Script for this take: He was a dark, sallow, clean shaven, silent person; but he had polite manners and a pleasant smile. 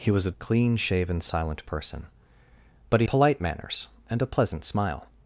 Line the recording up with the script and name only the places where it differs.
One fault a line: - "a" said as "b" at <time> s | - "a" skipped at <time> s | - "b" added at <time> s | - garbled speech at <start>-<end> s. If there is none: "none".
- "dark sallow" skipped at 0.3 s
- "had" skipped at 3.1 s